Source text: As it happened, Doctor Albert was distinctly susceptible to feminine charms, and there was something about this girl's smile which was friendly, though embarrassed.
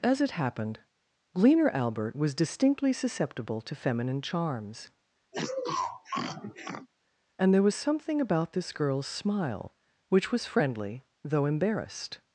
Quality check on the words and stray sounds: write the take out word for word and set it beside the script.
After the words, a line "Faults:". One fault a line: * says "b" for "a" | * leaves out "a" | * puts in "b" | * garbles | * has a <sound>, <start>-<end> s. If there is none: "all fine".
As it happened, Gleaner Albert was distinctly susceptible to feminine charms, and there was something about this girl's smile which was friendly, though embarrassed.
Faults:
* says "Gleaner" for "Doctor"
* has a sniff, 5.3-6.9 s